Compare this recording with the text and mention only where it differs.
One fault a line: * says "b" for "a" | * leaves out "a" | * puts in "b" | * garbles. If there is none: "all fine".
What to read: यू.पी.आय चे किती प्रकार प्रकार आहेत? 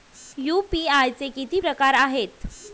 * leaves out "प्रकार"